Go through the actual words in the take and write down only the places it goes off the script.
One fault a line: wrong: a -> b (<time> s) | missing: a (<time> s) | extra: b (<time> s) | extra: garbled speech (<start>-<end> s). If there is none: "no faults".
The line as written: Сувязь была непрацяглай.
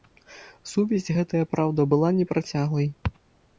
extra: гэтая праўда (1.2 s)